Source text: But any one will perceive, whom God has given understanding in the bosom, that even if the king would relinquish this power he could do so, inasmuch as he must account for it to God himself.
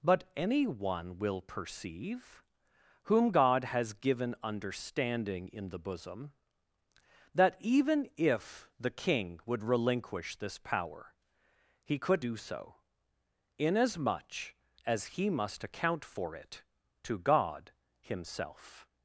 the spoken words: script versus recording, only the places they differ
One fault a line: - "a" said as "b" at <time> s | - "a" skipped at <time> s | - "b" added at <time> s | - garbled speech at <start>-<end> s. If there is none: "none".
none